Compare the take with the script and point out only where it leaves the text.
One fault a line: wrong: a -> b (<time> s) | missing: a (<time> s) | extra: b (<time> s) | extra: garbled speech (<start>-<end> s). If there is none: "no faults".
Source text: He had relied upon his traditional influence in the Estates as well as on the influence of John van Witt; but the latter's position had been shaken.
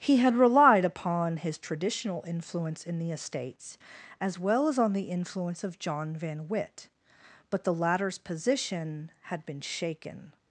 no faults